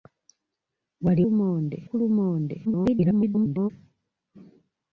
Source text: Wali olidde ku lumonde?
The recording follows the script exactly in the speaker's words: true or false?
false